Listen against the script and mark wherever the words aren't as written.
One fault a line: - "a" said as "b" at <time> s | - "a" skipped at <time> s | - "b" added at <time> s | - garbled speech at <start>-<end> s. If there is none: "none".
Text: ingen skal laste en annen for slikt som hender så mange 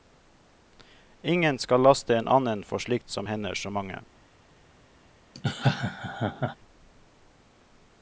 none